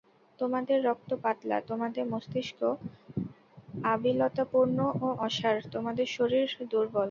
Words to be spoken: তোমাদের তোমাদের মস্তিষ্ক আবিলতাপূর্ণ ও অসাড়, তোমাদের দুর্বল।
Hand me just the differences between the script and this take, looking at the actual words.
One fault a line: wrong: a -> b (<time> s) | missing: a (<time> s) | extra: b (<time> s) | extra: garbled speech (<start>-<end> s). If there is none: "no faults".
extra: রক্ত পাতলা (0.9 s)
extra: শরীর (6.2 s)